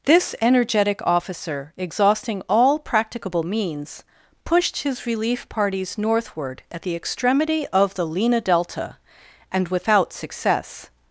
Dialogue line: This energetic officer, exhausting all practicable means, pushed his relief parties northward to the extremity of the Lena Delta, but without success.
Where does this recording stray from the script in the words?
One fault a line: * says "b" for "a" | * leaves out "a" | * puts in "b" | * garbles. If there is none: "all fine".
* says "at" for "to"
* says "and" for "but"